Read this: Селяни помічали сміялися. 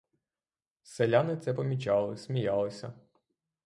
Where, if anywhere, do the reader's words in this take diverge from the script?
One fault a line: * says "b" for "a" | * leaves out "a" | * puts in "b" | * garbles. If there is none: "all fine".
* puts in "це"